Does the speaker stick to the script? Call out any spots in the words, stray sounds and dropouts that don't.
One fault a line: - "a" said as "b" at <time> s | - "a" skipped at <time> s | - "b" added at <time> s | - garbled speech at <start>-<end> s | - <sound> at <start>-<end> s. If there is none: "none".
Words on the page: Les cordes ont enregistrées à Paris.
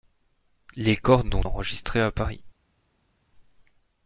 none